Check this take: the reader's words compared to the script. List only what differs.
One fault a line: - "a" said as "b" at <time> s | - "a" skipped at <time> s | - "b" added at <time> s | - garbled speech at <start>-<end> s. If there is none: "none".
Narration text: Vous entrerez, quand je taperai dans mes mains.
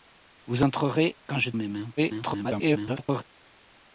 - "taperai dans" skipped at 1.5 s
- garbled speech at 2.0-3.2 s